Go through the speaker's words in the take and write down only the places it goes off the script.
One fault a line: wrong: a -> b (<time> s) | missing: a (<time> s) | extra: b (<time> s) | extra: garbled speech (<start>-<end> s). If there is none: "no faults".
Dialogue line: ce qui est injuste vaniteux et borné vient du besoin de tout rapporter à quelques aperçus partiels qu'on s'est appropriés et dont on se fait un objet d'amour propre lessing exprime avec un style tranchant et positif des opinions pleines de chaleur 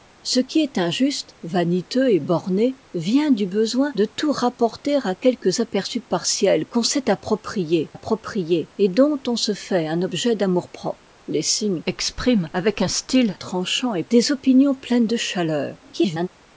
extra: appropriés (7.9 s)
missing: positif (14.0 s)
extra: garbled speech (15.8-16.3 s)